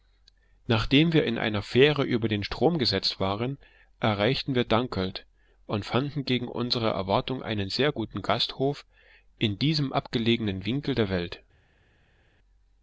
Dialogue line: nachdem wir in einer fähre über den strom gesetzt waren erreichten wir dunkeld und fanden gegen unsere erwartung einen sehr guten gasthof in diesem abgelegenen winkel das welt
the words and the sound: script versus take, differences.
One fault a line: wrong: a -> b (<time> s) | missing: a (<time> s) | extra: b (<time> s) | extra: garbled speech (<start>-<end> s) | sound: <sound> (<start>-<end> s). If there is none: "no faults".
wrong: das -> der (10.9 s)